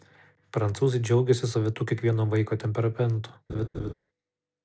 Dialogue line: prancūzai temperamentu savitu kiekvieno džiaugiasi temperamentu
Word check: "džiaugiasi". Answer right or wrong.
wrong